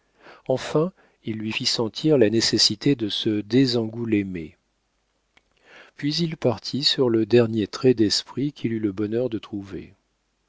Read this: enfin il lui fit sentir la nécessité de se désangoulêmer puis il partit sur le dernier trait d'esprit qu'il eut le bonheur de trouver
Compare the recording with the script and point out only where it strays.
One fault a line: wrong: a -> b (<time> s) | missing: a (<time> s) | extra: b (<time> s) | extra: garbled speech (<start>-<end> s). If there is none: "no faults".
no faults